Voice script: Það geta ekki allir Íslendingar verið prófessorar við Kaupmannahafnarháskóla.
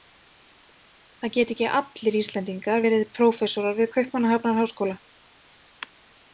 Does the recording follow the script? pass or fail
pass